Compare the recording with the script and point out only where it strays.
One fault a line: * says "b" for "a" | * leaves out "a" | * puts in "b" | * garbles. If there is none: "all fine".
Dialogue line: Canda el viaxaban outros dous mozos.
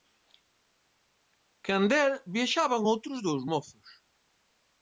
all fine